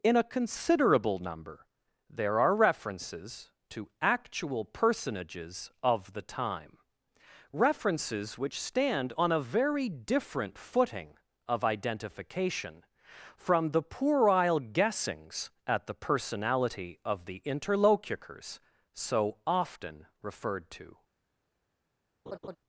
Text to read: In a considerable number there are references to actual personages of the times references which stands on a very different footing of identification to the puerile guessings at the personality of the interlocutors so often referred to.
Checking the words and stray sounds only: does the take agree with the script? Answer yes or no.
no